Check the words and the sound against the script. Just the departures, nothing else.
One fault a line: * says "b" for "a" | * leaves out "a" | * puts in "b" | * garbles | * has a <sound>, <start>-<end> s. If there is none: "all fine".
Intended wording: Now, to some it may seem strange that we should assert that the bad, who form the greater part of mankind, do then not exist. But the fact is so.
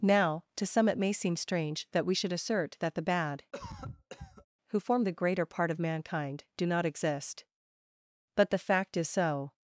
* has a cough, 3.5-4.5 s
* leaves out "then"